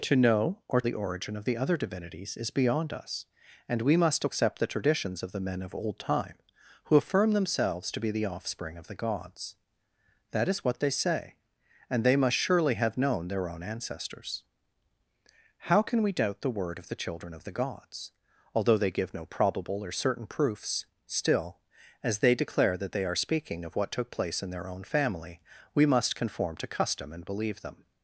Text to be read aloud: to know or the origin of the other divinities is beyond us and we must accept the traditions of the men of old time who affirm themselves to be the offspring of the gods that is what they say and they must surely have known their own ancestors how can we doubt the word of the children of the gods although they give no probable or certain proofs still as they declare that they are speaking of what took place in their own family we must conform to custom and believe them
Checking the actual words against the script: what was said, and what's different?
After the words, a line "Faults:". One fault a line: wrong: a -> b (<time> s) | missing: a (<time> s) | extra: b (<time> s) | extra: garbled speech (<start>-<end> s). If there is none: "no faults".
to know or the origin of the other divinities is beyond us and we must accept the traditions of the men of old time who affirm themselves to be the offspring of the gods that is what they say and they must surely have known their own ancestors how can we doubt the word of the children of the gods although they give no probable or certain proofs still as they declare that they are speaking of what took place in their own family we must conform to custom and believe them
Faults:
no faults